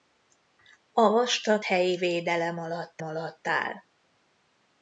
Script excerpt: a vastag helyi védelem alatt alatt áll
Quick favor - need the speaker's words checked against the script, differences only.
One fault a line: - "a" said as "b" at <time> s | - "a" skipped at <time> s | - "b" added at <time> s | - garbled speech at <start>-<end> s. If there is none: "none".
none